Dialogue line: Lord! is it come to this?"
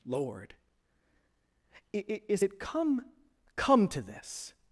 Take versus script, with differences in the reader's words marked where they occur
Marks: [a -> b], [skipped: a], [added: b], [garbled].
Lord! is it come [added: come] to this?"